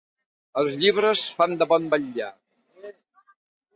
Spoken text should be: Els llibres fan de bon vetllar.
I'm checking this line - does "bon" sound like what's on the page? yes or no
yes